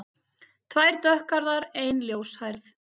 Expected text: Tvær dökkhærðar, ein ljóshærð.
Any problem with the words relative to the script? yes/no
no